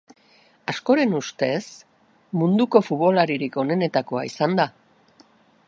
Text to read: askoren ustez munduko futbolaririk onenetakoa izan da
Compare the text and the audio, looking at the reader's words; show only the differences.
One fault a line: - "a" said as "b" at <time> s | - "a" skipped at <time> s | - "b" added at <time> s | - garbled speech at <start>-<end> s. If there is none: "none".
none